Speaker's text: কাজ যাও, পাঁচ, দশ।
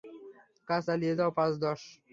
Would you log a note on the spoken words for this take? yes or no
yes